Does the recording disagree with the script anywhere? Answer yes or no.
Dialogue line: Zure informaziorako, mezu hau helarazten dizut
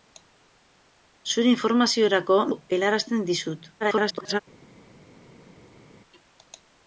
yes